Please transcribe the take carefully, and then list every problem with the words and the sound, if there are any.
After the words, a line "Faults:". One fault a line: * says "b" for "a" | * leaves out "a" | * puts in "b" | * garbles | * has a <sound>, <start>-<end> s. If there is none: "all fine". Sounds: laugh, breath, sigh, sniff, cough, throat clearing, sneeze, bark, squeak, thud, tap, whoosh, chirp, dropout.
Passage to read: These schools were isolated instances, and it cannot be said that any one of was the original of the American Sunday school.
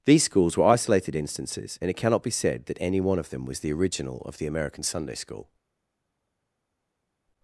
These schools were isolated instances, and it cannot be said that any one of them was the original of the American Sunday school.
Faults:
* puts in "them"